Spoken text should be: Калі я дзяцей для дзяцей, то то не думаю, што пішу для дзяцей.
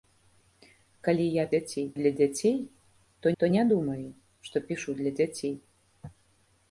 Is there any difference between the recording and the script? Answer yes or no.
no